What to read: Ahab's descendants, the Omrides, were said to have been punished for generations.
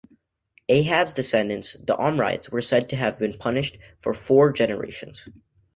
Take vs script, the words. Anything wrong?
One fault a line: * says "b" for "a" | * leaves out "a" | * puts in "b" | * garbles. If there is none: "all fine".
* puts in "four"